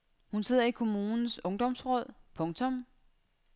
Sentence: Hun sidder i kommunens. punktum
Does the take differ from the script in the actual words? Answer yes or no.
yes